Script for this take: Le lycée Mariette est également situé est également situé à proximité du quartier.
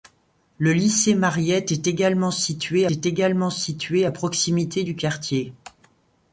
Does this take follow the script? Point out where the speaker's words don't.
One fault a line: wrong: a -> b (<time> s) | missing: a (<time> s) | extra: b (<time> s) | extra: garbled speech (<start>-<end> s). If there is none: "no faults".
no faults